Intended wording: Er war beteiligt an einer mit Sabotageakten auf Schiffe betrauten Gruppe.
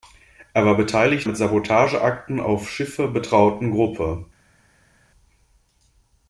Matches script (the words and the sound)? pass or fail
fail